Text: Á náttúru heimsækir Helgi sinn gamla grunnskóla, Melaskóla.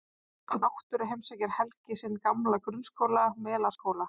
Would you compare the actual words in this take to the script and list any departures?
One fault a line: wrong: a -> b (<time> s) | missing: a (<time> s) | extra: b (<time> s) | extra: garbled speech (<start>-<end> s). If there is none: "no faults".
no faults